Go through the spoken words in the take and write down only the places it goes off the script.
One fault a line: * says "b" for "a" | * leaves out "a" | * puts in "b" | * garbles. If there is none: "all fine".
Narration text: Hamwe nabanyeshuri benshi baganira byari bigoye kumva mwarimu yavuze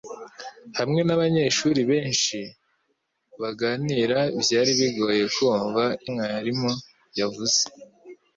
all fine